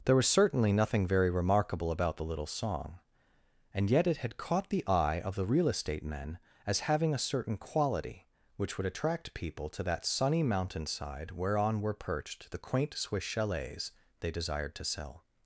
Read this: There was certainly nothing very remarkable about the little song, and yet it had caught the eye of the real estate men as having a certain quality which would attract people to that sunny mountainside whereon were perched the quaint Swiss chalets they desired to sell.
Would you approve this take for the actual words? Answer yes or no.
yes